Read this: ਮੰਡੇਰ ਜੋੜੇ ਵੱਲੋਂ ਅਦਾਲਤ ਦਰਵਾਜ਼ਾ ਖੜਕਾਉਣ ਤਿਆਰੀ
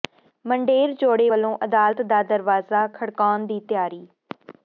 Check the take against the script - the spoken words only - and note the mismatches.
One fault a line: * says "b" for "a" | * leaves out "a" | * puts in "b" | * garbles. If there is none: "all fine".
* puts in "ਦਾ"
* puts in "ਦੀ"